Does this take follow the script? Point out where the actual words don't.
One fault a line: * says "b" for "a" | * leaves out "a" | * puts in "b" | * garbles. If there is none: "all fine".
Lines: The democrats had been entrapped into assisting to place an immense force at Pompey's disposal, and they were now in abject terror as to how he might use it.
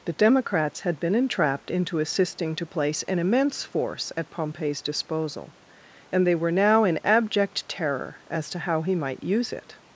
all fine